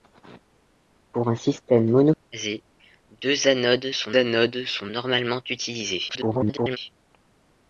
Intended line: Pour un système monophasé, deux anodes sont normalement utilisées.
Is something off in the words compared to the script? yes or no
yes